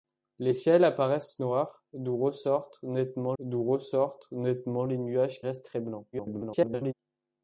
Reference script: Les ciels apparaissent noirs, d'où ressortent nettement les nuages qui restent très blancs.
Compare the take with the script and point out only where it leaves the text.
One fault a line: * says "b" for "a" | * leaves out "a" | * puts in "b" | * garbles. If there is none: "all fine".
* puts in "d'où ressortent nettement"
* leaves out "qui"
* garbles